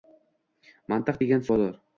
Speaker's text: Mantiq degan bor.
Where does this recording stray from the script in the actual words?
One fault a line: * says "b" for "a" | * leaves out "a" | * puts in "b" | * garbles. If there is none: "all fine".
all fine